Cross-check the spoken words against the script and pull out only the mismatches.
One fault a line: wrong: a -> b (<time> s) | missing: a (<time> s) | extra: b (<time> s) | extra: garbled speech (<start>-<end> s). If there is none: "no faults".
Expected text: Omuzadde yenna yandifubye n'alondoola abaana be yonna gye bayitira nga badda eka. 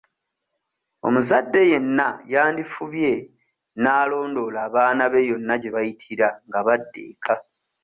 no faults